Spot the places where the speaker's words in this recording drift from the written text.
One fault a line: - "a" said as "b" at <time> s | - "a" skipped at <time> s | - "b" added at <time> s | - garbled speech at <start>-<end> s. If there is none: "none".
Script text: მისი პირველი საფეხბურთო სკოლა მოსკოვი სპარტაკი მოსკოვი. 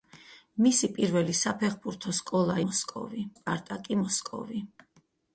none